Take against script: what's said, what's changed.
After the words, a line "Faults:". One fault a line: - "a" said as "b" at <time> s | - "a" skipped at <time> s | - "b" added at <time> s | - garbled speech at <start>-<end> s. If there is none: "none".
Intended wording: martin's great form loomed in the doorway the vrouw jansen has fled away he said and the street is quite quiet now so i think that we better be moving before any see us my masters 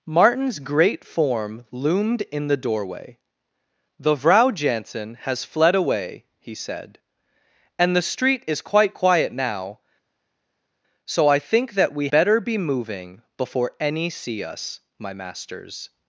martin's great form loomed in the doorway the vrouw jansen has fled away he said and the street is quite quiet now so i think that we better be moving before any see us my masters
Faults:
none